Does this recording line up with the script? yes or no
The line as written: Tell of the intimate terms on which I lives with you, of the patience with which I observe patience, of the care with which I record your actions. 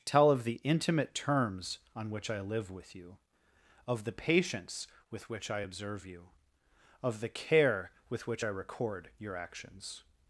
no